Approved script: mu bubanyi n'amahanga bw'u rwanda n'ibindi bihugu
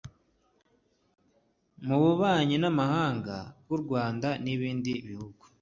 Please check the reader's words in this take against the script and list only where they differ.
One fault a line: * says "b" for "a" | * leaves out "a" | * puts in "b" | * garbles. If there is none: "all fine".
all fine